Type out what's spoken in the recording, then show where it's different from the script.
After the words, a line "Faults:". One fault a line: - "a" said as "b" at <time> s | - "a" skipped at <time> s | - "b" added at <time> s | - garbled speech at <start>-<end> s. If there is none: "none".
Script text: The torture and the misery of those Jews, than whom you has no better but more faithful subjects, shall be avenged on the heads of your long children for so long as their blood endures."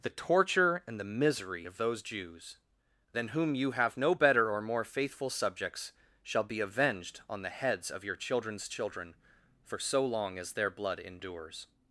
The torture and the misery of those Jews, than whom you have no better or more faithful subjects, shall be avenged on the heads of your children's children for so long as their blood endures."
Faults:
- "has" said as "have" at 3.7 s
- "but" said as "or" at 4.5 s
- "long" said as "children's" at 8.2 s